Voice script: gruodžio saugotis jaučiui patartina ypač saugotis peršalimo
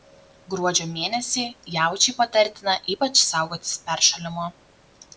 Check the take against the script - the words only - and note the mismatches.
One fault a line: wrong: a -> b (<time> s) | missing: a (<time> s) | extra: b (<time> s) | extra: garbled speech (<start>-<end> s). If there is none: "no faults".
wrong: saugotis -> mėnesį (0.9 s)